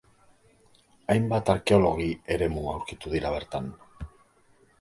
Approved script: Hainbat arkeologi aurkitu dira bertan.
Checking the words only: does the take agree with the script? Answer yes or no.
no